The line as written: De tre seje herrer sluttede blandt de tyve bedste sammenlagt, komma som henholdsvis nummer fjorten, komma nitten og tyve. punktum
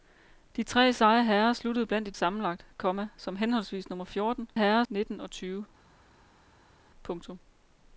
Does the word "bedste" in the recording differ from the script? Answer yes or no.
yes